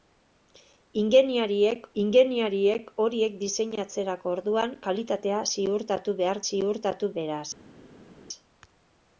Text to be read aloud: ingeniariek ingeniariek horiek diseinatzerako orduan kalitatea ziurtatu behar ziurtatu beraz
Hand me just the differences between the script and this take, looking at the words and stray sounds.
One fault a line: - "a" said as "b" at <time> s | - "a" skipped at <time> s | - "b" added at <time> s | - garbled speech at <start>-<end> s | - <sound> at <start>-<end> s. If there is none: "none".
none